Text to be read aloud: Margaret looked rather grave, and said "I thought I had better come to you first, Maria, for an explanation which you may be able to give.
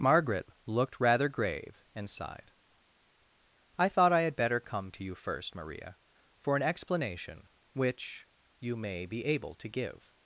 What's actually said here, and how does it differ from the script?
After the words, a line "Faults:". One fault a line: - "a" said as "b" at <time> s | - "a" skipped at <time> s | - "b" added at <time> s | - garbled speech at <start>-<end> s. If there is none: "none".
Margaret looked rather grave, and sighed "I thought I had better come to you first, Maria, for an explanation which you may be able to give.
Faults:
- "said" said as "sighed" at 2.1 s